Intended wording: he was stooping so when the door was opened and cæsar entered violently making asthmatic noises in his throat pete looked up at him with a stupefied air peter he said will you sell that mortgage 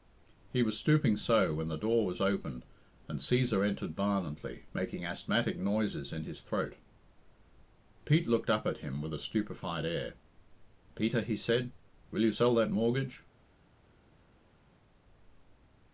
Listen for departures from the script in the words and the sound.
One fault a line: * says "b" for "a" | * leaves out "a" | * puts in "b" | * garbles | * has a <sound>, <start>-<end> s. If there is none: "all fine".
all fine